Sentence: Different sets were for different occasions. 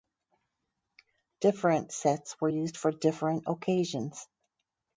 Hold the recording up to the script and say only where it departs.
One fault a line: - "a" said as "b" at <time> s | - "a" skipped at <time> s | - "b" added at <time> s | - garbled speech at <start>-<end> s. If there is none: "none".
- "used" added at 2.5 s